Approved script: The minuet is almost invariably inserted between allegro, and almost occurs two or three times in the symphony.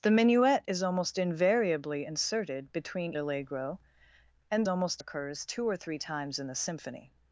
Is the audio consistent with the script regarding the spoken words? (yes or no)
yes